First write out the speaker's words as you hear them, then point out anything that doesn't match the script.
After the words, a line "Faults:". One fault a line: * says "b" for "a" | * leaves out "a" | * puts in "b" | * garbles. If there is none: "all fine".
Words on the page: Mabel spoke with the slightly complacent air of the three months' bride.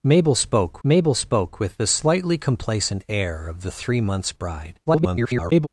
Mabel spoke mabel spoke with the slightly complacent air of the three months' bride. [garbled]
Faults:
* puts in "mabel spoke"
* garbles